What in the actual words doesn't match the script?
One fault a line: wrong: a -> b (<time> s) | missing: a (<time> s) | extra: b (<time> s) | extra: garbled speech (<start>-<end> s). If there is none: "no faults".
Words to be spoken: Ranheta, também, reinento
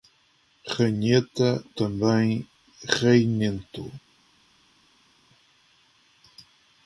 no faults